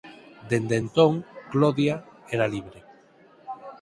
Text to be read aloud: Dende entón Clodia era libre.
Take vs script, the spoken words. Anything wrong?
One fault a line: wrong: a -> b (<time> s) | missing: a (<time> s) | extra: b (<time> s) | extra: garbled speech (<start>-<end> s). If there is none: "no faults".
no faults